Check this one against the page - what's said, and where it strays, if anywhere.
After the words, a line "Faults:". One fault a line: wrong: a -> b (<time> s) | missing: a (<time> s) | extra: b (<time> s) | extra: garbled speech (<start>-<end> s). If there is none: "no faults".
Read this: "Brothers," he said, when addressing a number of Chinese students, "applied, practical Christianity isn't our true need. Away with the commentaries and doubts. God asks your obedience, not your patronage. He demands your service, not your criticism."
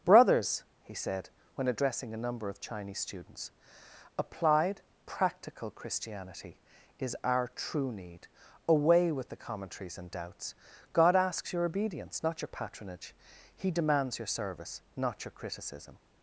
"Brothers," he said, when addressing a number of Chinese students, "applied, practical Christianity is our true need. Away with the commentaries and doubts. God asks your obedience, not your patronage. He demands your service, not your criticism."
Faults:
wrong: isn't -> is (7.0 s)